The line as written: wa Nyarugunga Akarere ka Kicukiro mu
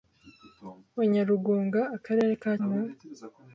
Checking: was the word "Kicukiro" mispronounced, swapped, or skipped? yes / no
yes